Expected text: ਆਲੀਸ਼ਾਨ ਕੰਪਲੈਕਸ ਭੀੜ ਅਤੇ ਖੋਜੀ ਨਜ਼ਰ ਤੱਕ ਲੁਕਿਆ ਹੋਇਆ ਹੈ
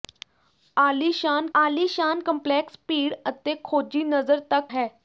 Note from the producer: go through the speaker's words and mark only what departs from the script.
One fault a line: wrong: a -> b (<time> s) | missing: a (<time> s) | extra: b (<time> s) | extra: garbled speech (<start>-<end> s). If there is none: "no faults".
extra: ਆਲੀਸ਼ਾਨ (1.5 s)
missing: ਲੁਕਿਆ ਹੋਇਆ (4.7 s)